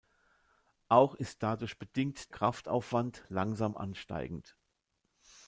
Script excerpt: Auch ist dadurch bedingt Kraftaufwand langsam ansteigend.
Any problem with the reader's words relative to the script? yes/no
no